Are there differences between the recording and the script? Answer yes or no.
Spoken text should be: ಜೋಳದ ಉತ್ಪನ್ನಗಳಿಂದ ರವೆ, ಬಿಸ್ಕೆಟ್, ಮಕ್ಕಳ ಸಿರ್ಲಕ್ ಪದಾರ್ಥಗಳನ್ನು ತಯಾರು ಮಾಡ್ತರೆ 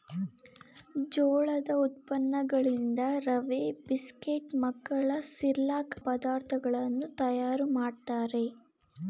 no